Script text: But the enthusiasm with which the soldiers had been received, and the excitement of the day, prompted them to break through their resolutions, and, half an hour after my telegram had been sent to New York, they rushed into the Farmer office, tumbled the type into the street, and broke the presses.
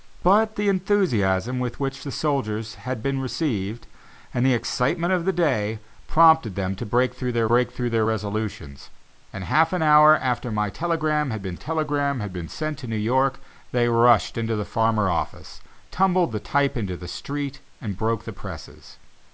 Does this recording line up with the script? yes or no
no